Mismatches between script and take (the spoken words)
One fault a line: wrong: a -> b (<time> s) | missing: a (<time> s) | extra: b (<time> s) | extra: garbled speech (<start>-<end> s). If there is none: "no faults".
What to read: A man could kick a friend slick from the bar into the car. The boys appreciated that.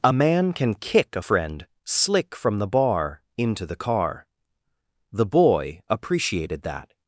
wrong: could -> can (0.5 s)
wrong: boys -> boy (5.2 s)